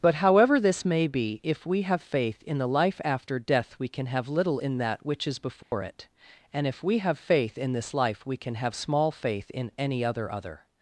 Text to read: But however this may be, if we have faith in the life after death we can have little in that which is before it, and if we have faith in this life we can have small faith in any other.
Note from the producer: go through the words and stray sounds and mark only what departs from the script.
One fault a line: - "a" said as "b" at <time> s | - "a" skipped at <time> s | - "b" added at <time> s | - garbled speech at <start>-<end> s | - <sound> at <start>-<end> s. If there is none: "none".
- dropout at 5.6-5.7 s
- "other" added at 10.3 s